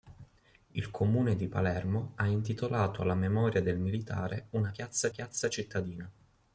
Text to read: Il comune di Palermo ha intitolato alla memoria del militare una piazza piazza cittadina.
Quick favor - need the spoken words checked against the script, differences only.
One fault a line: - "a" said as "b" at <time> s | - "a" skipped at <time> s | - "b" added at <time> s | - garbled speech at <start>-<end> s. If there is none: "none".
none